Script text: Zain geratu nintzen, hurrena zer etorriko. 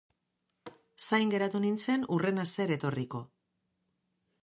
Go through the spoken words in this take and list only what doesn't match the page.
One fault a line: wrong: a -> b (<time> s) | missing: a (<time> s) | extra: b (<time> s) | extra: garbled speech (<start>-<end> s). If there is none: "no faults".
no faults